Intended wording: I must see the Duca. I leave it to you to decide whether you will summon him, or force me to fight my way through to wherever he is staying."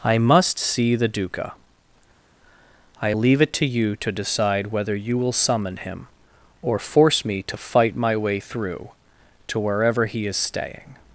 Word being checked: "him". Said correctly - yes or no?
yes